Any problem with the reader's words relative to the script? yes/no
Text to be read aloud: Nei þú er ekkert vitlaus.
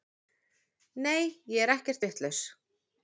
yes